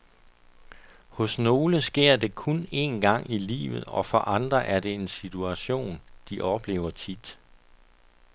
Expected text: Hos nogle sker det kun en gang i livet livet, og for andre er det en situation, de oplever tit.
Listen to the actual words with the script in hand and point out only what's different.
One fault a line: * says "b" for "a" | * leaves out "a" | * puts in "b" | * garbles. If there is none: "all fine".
* leaves out "livet"